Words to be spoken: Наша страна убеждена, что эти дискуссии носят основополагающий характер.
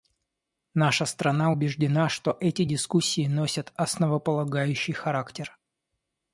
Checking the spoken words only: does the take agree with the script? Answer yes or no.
yes